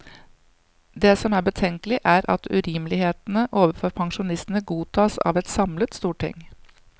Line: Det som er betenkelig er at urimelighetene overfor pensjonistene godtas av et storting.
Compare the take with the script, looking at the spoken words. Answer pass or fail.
fail